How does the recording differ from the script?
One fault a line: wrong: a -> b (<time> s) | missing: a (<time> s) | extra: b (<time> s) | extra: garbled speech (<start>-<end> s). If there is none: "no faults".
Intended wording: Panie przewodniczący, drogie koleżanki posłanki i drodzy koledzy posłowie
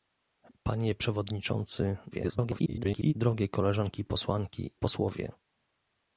extra: garbled speech (2.1-3.1 s)
missing: i drodzy koledzy (4.8 s)